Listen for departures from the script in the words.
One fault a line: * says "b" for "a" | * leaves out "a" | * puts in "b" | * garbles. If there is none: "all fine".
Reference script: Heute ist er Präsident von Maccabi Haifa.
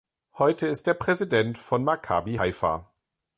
all fine